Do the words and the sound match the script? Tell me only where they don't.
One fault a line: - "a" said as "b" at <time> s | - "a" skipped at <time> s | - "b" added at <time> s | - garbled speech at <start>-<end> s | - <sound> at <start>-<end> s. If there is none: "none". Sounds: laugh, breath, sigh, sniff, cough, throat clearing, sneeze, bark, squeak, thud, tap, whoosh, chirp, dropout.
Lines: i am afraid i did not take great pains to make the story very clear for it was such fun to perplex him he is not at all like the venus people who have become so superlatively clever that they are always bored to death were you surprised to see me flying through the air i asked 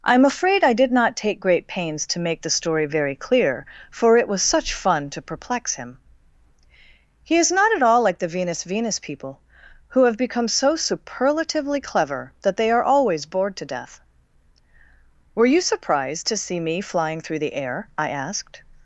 - "venus" added at 8.6 s